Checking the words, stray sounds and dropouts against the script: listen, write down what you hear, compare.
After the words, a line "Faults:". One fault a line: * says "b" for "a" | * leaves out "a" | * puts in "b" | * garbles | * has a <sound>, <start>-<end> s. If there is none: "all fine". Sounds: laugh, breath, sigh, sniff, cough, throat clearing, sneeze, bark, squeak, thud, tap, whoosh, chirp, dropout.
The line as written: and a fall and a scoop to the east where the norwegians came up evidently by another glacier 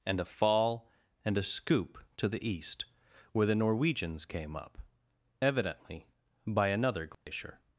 and a fall and a scoop to the east where the norwegians came up evidently by another glacier
Faults:
* has a dropout, 7.1-7.3 s